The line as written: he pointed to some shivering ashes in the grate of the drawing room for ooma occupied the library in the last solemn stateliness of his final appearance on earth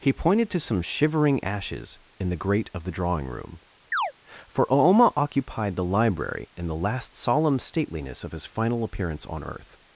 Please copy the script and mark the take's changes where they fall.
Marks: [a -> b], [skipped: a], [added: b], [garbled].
he pointed to some shivering ashes in the grate of the drawing room for ooma occupied the library in the last solemn stateliness of his final appearance on earth